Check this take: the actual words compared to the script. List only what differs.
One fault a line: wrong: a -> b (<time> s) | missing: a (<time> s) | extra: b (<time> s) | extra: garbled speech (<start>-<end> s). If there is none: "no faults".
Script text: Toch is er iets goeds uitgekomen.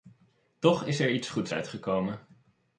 no faults